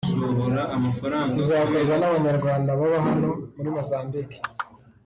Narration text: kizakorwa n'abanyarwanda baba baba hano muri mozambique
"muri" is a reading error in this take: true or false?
false